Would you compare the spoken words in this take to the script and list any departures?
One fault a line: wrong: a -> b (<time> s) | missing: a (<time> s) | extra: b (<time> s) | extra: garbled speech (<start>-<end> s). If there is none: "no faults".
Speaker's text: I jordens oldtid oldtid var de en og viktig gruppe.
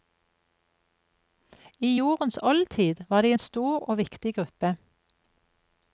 missing: oldtid (2.9 s)
extra: stor (3.4 s)